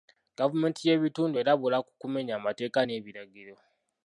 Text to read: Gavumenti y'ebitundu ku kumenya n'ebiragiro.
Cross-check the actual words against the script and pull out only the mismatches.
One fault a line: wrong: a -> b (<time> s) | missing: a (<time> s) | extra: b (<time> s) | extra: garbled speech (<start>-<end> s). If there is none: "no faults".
extra: erabula (1.4 s)
extra: amateeka (2.4 s)